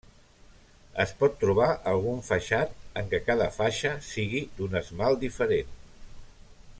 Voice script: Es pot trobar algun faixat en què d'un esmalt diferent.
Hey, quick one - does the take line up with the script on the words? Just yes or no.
no